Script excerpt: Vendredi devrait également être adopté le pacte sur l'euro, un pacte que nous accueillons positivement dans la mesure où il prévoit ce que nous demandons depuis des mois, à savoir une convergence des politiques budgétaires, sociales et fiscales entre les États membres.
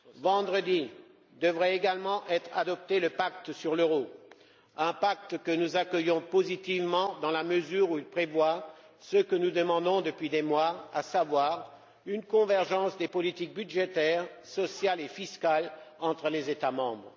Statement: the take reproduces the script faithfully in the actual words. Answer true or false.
true